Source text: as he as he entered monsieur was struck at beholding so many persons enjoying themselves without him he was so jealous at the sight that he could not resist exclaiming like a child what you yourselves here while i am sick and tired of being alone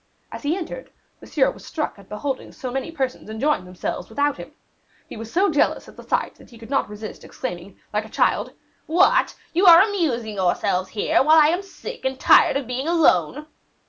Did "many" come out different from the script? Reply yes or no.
no